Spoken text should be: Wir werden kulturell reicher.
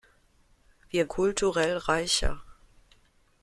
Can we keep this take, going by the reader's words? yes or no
no